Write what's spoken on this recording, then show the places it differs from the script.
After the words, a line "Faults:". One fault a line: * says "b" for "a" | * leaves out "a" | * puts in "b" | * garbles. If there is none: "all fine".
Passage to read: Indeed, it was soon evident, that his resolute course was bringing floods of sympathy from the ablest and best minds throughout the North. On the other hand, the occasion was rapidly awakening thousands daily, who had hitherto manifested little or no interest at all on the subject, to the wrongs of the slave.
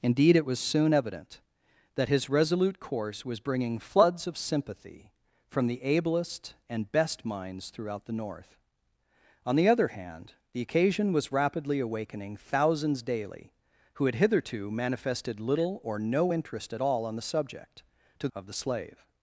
Indeed, it was soon evident, that his resolute course was bringing floods of sympathy from the ablest and best minds throughout the North. On the other hand, the occasion was rapidly awakening thousands daily, who had hitherto manifested little or no interest at all on the subject, to of the slave.
Faults:
* leaves out "the wrongs"